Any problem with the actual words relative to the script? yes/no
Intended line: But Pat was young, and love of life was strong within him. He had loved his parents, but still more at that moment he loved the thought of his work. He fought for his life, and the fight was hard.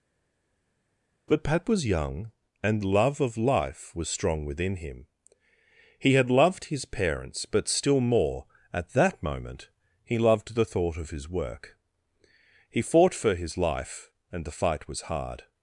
no